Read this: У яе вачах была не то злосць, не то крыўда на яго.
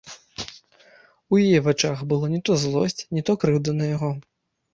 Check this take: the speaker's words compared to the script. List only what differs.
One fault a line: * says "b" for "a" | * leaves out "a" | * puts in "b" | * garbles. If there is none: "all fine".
all fine